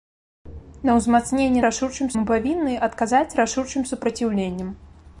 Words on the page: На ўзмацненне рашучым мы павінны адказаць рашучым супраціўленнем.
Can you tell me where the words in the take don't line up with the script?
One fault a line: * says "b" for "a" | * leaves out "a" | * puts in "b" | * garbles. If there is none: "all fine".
all fine